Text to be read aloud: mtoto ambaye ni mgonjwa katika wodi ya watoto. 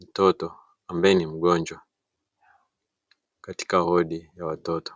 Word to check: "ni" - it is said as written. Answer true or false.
true